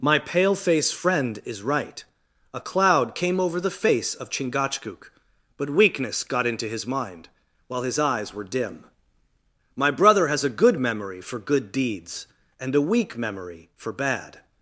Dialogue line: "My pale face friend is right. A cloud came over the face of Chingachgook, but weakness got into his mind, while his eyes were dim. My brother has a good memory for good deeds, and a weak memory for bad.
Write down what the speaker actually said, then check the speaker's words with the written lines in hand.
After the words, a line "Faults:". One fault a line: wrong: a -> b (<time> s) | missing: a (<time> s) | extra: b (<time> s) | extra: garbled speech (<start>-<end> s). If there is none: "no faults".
"My pale face friend is right. A cloud came over the face of Chingachgook, but weakness got into his mind, while his eyes were dim. My brother has a good memory for good deeds, and a weak memory for bad.
Faults:
no faults